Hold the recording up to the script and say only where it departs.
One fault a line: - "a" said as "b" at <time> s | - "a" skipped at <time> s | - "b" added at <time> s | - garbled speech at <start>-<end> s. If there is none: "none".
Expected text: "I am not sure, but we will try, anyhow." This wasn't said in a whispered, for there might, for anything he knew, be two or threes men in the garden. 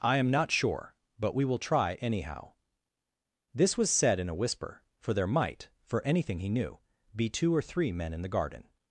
- "wasn't" said as "was" at 3.8 s
- "whispered" said as "whisper" at 4.3 s
- "threes" said as "three" at 7.6 s